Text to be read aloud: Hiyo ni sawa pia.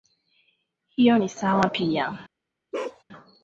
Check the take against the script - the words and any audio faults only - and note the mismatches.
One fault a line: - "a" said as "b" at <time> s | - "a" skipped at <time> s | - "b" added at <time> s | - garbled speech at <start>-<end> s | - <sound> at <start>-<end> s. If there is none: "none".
- bark at 2.7-3.0 s